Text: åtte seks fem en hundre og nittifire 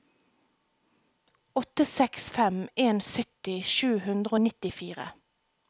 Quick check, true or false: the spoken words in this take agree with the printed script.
false